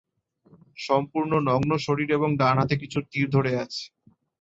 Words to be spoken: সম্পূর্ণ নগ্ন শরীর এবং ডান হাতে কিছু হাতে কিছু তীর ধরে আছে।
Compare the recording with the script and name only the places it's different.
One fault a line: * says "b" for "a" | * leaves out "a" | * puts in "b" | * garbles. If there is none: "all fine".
* leaves out "হাতে কিছু"